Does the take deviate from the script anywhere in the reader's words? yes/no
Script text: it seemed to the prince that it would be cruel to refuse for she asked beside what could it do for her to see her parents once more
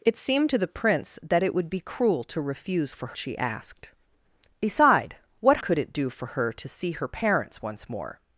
no